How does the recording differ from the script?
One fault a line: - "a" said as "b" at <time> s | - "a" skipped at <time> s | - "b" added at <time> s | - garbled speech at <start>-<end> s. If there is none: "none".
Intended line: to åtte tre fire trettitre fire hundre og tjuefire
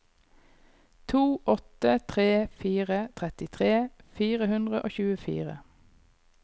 none